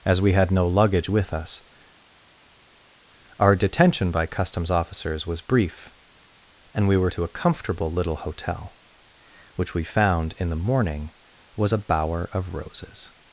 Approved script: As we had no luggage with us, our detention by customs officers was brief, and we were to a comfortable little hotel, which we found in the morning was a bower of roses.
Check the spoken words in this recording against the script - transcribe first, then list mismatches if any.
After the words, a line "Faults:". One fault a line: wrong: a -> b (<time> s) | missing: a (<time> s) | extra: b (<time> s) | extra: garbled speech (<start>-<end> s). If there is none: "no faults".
As we had no luggage with us, our detention by customs officers was brief, and we were to a comfortable little hotel, which we found in the morning was a bower of roses.
Faults:
no faults